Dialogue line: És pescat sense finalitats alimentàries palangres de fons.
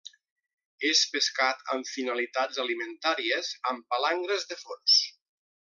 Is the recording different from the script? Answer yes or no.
yes